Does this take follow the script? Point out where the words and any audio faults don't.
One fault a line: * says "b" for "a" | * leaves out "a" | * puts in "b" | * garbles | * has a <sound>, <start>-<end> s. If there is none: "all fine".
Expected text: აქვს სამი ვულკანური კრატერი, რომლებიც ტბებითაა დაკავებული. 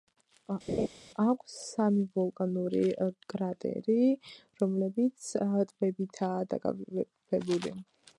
* has a laugh, 0.7-0.9 s